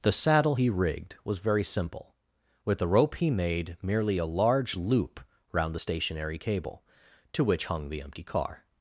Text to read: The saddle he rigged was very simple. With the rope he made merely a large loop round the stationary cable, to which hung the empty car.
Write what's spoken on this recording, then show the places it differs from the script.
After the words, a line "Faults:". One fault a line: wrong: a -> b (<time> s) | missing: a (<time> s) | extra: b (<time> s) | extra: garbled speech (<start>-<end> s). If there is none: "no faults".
The saddle he rigged was very simple. With the rope he made merely a large loop round the stationary cable, to which hung the empty car.
Faults:
no faults